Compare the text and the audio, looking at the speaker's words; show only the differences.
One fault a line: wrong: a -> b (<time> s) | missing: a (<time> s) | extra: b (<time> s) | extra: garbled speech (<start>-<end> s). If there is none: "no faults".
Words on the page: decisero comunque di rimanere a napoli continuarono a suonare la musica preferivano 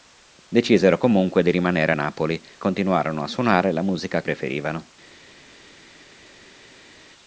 no faults